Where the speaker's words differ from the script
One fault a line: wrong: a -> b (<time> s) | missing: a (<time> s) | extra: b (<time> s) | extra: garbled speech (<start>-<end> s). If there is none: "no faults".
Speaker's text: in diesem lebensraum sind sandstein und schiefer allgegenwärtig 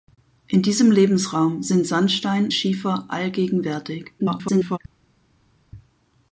missing: und (2.5 s)
extra: garbled speech (4.2-4.8 s)